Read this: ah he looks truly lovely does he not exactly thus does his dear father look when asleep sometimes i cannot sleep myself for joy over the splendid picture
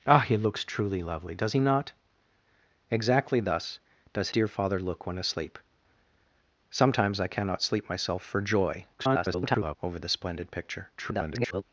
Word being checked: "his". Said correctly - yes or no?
no